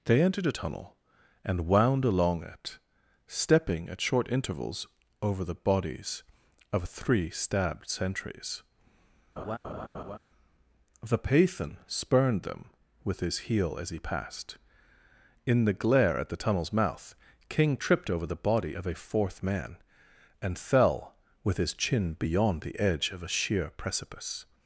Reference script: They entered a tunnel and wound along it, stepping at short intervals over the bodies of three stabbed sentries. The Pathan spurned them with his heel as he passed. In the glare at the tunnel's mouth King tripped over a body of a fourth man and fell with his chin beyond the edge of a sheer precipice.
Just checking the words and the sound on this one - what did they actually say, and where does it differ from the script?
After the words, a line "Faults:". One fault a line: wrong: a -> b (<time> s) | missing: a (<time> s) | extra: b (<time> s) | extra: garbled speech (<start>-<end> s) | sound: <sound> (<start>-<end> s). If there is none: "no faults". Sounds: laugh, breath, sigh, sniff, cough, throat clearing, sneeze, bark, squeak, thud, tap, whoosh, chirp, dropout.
They entered a tunnel and wound along it, stepping at short intervals over the bodies of three stabbed sentries. The Pathan spurned them with his heel as he passed. In the glare at the tunnel's mouth King tripped over the body of a fourth man and fell with his chin beyond the edge of a sheer precipice.
Faults:
sound: laugh (9.4-10.2 s)
wrong: a -> the (18.2 s)